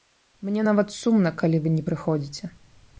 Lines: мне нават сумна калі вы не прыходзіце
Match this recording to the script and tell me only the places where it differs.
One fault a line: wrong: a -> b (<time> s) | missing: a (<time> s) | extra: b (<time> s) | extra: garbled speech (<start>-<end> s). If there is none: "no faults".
no faults